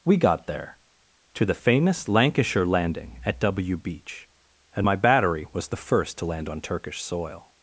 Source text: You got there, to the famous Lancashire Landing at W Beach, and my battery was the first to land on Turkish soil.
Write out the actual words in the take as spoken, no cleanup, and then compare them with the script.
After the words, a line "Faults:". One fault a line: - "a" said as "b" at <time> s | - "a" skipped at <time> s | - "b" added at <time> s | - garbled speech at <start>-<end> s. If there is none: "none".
We got there, to the famous Lancashire Landing at W Beach, and my battery was the first to land on Turkish soil.
Faults:
- "You" said as "We" at 0.0 s